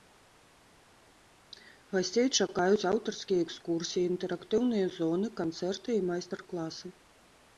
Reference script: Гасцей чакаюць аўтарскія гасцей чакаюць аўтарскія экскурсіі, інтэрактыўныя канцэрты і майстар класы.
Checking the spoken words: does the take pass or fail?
fail